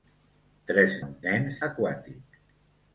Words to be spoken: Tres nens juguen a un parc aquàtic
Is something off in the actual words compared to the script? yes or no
yes